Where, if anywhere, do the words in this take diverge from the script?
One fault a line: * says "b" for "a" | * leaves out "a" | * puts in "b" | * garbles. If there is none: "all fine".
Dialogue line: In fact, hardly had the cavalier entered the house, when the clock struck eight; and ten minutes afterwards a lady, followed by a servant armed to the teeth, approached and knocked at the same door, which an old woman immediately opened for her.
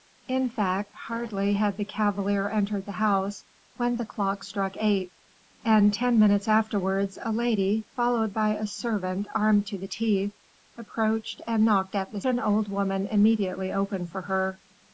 * leaves out "same door which"